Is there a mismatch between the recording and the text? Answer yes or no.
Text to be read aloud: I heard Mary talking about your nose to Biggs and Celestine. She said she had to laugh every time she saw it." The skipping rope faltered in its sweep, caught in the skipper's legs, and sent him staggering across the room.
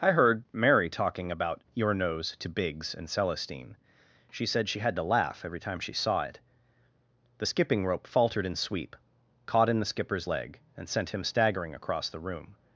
yes